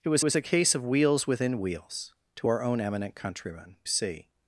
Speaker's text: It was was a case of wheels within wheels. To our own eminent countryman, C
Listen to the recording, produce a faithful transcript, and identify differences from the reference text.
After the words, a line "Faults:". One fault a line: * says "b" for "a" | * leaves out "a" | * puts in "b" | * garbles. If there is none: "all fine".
It was was a case of wheels within wheels. To our own eminent countryman, C
Faults:
all fine